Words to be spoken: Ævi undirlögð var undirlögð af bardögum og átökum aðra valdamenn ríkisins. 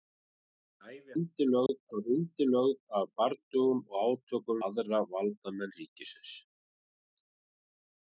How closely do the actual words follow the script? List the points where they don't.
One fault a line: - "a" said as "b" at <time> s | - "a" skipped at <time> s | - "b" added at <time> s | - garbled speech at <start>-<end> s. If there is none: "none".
none